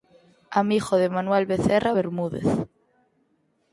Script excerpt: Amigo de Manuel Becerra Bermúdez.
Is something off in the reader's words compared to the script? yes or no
no